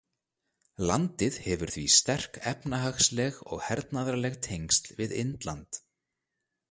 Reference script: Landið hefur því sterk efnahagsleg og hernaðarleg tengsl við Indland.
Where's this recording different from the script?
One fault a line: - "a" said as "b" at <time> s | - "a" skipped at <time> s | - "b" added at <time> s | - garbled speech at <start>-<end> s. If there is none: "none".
none